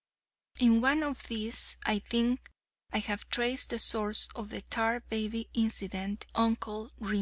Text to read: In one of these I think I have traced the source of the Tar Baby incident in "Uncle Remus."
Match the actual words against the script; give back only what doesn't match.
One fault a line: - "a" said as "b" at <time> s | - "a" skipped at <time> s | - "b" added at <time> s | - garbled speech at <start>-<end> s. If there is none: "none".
- "in" skipped at 6.2 s